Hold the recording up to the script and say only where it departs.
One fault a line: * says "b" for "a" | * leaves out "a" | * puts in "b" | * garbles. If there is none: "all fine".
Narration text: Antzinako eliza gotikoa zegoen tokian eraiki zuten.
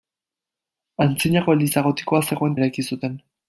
* leaves out "tokian"